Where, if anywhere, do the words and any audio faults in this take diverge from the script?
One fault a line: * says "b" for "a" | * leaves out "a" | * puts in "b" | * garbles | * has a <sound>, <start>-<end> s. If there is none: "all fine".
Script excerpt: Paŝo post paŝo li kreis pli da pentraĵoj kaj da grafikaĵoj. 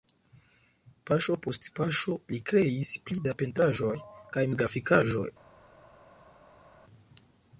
all fine